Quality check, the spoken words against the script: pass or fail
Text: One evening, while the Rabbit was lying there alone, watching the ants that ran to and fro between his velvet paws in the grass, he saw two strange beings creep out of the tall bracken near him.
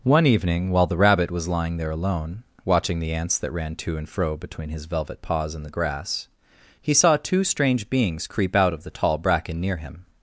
pass